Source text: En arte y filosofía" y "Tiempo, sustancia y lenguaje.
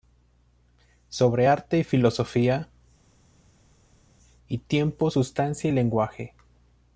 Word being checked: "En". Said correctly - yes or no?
no